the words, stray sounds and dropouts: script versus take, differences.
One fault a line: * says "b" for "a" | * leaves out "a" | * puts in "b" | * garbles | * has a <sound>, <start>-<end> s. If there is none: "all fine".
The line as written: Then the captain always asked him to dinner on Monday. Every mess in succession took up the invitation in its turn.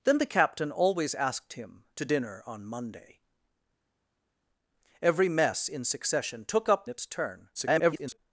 * leaves out "the invitation in"
* garbles